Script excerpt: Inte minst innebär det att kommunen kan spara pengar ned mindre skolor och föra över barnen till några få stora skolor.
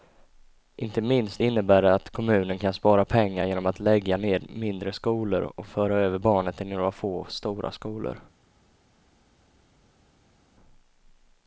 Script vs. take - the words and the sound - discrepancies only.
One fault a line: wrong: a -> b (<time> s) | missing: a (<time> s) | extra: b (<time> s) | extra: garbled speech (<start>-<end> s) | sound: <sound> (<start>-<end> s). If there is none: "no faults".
extra: genom att lägga (3.5 s)